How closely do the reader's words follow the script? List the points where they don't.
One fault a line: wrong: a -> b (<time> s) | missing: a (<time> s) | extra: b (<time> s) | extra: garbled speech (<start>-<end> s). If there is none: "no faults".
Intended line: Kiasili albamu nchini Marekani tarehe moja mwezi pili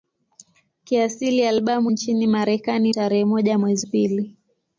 no faults